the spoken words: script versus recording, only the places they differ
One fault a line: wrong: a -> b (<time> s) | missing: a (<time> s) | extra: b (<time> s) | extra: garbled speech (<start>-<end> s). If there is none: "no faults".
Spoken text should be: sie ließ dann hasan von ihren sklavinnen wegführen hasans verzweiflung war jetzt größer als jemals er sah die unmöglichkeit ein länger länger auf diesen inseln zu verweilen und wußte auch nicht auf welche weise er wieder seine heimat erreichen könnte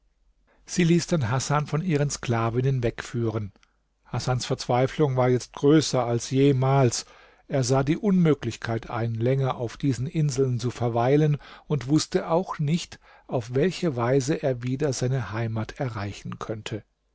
missing: länger (9.6 s)